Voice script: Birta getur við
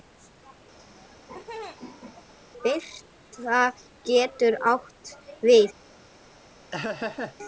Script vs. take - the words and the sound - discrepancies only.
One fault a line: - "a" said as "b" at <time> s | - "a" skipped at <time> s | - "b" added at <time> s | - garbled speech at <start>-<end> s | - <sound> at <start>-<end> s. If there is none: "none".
- laugh at 0.8-2.3 s
- "átt" added at 4.7 s
- laugh at 6.7-7.4 s